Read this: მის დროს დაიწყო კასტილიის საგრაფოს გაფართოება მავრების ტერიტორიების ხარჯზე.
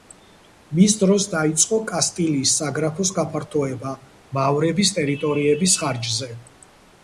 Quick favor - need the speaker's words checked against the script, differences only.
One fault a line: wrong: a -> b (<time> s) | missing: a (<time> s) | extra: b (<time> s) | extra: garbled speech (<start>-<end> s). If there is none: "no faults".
no faults